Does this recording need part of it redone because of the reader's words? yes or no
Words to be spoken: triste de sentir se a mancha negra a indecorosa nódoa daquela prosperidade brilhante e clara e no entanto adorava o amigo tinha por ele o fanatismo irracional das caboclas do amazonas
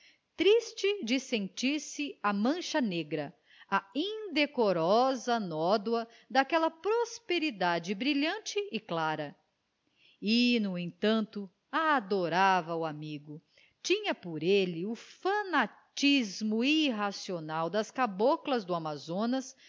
no